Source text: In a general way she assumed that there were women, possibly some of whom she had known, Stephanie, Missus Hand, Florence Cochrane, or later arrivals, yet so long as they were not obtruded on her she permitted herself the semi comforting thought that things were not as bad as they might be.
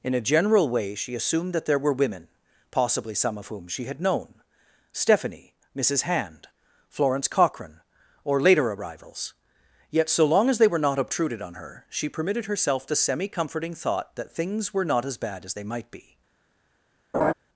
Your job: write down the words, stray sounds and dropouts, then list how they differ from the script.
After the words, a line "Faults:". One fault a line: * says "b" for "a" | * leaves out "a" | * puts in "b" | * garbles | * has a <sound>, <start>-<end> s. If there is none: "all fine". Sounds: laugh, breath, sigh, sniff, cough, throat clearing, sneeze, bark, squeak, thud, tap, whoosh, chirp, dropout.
In a general way she assumed that there were women, possibly some of whom she had known, Stephanie, Missus Hand, Florence Cochrane, or later arrivals, yet so long as they were not obtruded on her she permitted herself the semi comforting thought that things were not as bad as they might be.
Faults:
* has a laugh, 17.1-17.3 s